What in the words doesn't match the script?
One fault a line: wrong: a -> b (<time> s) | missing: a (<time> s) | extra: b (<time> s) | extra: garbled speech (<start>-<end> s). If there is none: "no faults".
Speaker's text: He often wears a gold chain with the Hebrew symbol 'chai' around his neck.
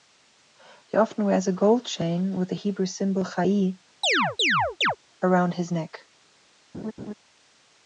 no faults